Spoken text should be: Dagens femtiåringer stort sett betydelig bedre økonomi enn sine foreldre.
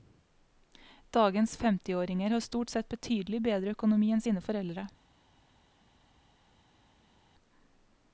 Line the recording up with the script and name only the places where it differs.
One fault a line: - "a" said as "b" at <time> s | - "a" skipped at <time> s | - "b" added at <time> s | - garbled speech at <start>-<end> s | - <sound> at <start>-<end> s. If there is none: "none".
- "har" added at 2.3 s